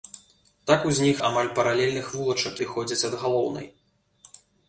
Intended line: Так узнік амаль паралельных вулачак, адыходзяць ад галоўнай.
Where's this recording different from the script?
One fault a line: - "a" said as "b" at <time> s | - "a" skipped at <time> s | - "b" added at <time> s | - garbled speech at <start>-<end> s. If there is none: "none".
none